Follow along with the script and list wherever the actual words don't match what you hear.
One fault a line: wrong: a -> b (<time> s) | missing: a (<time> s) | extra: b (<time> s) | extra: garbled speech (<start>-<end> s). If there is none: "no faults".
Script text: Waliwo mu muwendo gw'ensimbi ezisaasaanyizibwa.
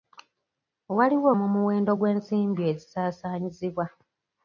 no faults